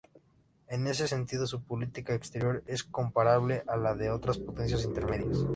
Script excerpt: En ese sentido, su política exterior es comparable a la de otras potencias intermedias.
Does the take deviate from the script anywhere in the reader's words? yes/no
no